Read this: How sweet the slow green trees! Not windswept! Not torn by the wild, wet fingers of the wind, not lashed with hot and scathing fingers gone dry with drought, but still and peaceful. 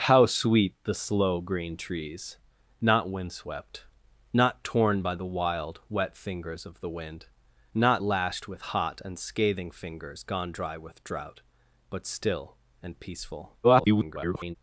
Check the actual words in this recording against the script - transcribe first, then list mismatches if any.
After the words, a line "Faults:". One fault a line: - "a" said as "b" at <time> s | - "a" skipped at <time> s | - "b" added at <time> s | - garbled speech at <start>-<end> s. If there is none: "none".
How sweet the slow green trees! Not windswept! Not torn by the wild, wet fingers of the wind, not lashed with hot and scathing fingers gone dry with drought, but still and peaceful. [garbled]
Faults:
- garbled speech at 13.6-14.6 s